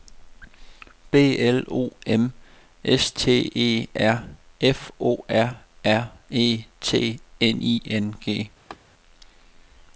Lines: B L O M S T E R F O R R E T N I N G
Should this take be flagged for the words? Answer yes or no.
no